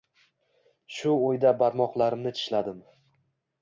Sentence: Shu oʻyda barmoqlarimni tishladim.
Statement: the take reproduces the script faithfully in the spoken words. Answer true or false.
true